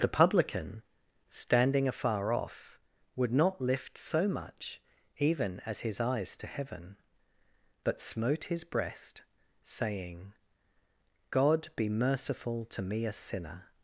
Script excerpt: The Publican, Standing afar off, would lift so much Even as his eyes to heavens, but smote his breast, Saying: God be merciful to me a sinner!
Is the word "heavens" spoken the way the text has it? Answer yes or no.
no